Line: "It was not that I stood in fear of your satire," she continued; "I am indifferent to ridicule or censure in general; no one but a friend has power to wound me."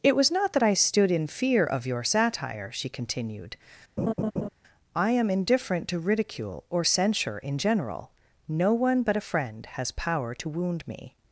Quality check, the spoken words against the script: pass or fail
pass